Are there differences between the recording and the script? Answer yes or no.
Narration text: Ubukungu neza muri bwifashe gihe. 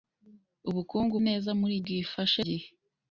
no